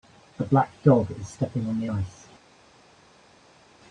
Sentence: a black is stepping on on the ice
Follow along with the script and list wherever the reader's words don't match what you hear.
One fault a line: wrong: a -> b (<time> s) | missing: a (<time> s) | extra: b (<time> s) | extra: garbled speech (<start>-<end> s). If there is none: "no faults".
extra: dog (0.8 s)
missing: on (1.8 s)